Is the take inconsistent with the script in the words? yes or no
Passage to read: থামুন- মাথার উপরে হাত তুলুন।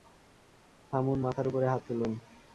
no